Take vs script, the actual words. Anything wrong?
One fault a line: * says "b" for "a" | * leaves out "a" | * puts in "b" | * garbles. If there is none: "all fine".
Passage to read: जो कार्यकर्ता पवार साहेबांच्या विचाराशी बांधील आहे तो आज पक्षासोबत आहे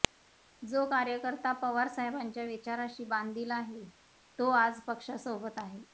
all fine